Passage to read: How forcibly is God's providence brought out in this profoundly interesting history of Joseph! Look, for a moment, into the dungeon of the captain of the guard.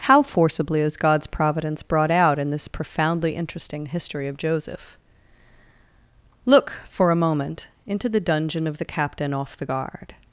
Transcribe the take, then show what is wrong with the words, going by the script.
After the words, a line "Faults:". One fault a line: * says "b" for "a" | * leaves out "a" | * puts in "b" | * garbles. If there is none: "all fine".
How forcibly is God's providence brought out in this profoundly interesting history of Joseph! Look, for a moment, into the dungeon of the captain off the guard.
Faults:
* says "off" for "of"